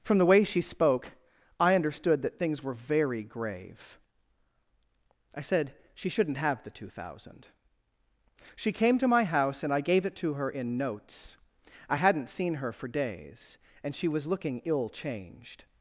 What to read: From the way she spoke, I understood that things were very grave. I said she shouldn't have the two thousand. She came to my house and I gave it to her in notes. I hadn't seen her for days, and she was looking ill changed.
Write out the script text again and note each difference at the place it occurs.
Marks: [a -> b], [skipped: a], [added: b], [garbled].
From the way she spoke, I understood that things were very grave. I said she shouldn't have the two thousand. She came to my house and I gave it to her in notes. I hadn't seen her for days, and she was looking ill changed.